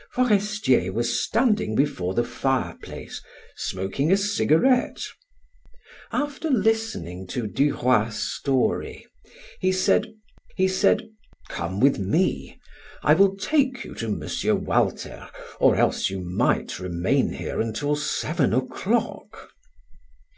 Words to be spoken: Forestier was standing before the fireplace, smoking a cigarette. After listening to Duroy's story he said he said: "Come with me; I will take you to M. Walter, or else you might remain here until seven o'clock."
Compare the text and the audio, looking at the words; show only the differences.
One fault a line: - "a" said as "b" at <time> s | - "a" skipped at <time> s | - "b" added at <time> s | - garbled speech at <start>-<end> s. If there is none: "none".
none